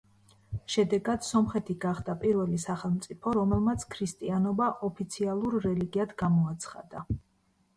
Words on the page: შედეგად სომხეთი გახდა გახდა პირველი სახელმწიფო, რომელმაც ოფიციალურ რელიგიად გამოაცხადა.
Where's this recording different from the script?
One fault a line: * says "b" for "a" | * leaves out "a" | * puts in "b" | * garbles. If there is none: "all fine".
* leaves out "გახდა"
* puts in "ქრისტიანობა"